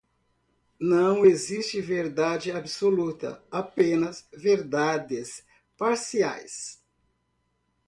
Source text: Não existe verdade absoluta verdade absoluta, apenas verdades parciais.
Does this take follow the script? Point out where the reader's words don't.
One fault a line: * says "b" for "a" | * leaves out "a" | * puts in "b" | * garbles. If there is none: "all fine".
* leaves out "verdade absoluta"